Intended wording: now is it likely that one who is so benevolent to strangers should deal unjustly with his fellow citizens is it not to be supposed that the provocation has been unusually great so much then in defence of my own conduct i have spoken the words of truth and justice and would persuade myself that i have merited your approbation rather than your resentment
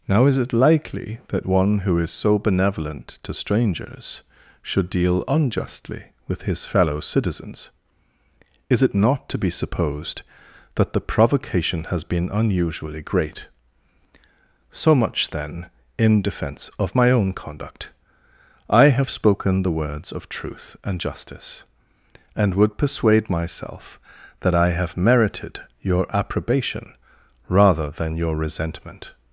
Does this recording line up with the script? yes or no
yes